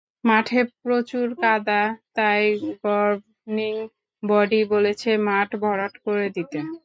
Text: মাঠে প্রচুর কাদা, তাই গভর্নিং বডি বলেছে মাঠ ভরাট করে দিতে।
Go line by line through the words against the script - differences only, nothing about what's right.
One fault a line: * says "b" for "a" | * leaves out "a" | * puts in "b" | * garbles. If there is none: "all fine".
all fine